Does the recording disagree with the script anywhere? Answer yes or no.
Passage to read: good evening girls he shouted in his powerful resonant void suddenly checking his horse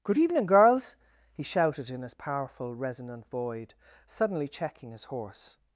no